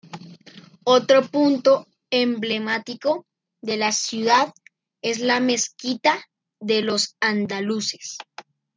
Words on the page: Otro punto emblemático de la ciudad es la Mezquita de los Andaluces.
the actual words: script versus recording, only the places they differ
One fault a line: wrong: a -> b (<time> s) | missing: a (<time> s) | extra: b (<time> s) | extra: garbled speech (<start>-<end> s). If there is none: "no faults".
no faults